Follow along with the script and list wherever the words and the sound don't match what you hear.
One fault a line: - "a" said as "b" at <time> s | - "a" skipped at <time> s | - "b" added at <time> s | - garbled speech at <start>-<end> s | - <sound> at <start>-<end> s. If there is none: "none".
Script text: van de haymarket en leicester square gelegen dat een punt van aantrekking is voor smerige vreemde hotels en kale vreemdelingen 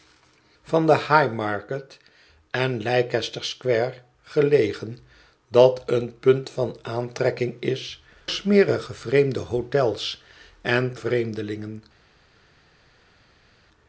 - "voor" skipped at 8.0 s
- "kale" skipped at 11.0 s